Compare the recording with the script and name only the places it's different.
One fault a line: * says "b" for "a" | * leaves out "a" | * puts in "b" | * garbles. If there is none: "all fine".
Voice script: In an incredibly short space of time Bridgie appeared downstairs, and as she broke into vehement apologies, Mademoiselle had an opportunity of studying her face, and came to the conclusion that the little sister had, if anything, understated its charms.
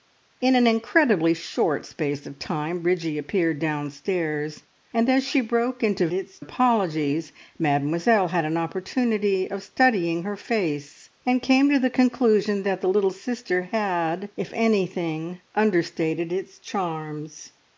* says "its" for "vehement"